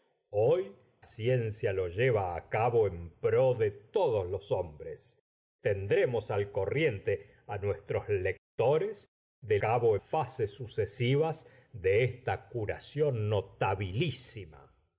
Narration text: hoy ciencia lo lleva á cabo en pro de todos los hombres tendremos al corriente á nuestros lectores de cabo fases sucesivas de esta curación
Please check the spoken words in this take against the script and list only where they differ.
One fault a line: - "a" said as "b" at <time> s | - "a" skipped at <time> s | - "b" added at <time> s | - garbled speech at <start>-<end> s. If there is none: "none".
none